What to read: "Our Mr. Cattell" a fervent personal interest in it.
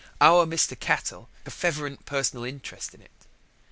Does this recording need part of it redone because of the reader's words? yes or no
no